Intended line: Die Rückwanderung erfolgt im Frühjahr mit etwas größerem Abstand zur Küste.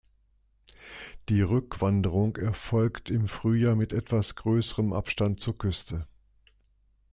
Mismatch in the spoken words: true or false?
false